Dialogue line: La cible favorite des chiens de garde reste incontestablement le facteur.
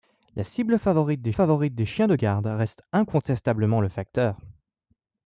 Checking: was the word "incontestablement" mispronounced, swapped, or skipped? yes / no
no